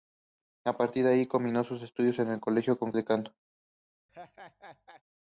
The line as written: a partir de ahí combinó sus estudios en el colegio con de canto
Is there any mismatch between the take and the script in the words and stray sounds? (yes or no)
yes